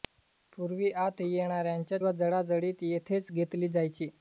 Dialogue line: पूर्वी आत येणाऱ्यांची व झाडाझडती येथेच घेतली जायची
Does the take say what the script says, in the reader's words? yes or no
yes